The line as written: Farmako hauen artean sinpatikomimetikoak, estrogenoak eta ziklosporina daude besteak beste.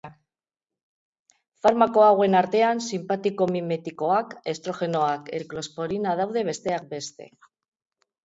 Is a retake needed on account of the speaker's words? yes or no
yes